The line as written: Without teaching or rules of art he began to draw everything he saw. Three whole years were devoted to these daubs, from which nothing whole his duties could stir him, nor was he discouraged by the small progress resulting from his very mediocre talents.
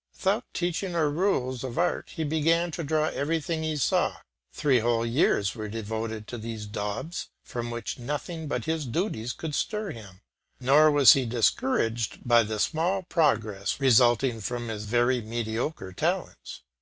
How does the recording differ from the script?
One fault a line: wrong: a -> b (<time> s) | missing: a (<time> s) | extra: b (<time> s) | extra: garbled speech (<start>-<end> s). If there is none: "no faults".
wrong: whole -> but (8.5 s)